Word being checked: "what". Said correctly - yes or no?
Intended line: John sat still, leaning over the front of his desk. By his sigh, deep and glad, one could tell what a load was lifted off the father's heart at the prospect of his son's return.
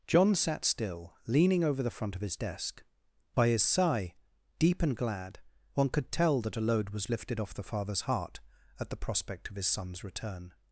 no